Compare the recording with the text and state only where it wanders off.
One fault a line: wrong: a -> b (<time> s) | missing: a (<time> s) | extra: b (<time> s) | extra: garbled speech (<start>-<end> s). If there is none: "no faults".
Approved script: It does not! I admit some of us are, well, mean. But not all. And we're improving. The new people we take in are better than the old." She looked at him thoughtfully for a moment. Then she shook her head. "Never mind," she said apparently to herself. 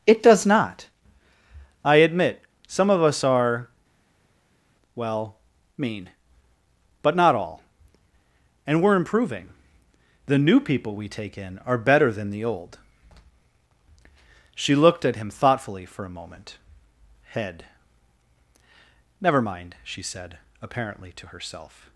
missing: Then she shook her (16.6 s)